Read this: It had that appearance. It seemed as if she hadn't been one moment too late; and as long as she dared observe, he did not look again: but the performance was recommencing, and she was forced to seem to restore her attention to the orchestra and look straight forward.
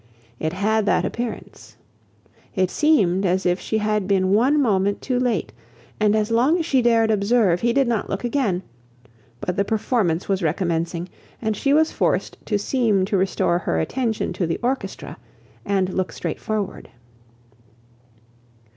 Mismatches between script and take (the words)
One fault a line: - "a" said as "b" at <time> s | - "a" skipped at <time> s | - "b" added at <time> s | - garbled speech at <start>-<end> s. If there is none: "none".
- "hadn't" said as "had" at 3.8 s